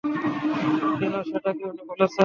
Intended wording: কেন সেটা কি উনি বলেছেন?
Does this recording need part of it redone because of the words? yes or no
no